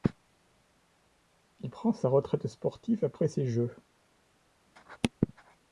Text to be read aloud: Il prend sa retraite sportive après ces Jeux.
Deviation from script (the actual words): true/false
false